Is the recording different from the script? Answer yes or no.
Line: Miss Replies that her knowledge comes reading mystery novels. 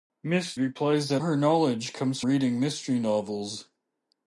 no